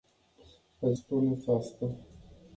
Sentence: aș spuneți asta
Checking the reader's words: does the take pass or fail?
pass